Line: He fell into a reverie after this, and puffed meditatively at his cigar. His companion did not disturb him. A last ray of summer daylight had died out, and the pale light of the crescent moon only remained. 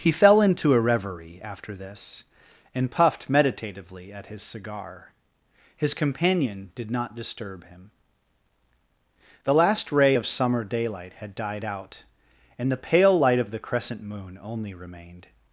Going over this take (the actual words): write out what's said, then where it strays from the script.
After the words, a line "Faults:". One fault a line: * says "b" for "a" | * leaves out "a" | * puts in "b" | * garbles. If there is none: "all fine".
He fell into a reverie after this, and puffed meditatively at his cigar. His companion did not disturb him. The last ray of summer daylight had died out, and the pale light of the crescent moon only remained.
Faults:
* says "The" for "A"